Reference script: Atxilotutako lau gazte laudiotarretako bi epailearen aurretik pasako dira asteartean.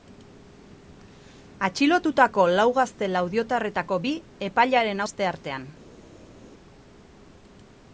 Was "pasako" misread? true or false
true